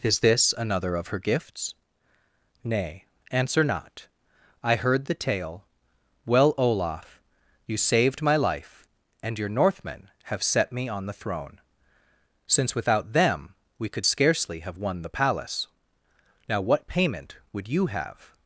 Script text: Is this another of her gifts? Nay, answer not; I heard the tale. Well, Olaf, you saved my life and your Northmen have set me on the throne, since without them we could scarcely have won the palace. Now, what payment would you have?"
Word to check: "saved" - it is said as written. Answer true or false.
true